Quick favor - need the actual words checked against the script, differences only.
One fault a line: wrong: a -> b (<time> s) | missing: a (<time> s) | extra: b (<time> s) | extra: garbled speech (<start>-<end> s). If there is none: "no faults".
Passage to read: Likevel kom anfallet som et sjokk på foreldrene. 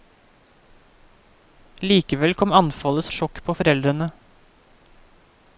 missing: som (3.0 s)